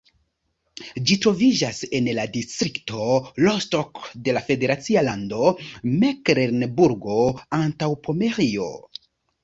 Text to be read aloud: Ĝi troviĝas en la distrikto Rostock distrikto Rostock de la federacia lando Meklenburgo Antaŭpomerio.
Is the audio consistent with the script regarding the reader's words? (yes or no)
no